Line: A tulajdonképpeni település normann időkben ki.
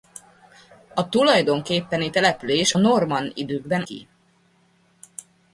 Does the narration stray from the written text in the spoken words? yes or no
no